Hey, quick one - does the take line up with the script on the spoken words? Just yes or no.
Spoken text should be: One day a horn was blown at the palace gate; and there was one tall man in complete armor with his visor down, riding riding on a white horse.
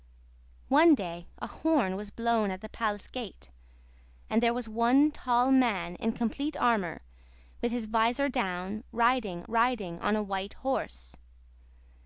yes